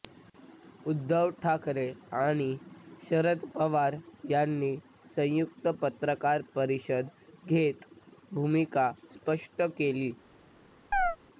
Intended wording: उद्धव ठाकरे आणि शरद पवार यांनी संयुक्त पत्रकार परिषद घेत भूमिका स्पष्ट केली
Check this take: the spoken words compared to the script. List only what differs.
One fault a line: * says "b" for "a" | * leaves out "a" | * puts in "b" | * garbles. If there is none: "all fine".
all fine